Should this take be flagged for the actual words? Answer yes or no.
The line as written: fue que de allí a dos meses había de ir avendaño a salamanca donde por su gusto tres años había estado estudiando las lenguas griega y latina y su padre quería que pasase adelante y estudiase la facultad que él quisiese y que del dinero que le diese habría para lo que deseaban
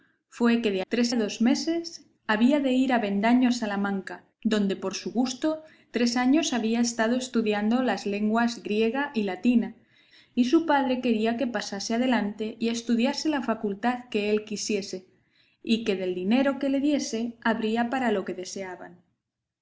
yes